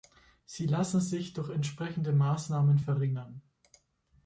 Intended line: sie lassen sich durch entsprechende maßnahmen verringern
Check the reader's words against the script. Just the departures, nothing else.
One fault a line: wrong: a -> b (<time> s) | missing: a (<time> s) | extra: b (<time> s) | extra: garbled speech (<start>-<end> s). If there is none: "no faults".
no faults